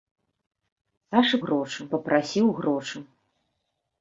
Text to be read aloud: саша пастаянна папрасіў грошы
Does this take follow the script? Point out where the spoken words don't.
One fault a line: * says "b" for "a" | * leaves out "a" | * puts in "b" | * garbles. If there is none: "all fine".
* says "грошы" for "пастаянна"